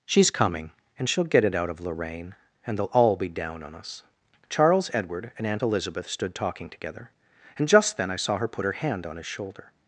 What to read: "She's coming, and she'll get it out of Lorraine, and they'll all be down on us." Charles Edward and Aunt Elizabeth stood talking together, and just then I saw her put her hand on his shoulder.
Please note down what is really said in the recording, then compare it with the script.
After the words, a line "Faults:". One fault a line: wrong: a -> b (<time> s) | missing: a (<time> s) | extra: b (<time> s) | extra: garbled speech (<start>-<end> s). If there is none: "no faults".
"She's coming, and she'll get it out of Lorraine, and they'll all be down on us." Charles Edward and Aunt Elizabeth stood talking together, and just then I saw her put her hand on his shoulder.
Faults:
no faults